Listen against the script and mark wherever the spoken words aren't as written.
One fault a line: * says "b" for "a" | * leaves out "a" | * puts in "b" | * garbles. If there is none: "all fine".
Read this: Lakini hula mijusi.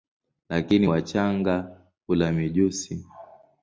* puts in "wachanga"